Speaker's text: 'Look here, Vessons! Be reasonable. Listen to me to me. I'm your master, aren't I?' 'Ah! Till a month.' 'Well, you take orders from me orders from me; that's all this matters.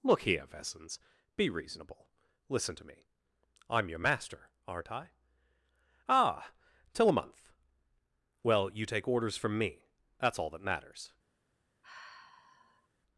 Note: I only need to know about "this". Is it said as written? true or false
false